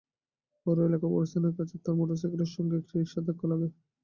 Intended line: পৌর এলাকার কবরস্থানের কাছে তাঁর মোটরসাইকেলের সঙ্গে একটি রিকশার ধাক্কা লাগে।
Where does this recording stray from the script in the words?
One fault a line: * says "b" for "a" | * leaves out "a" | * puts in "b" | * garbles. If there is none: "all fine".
all fine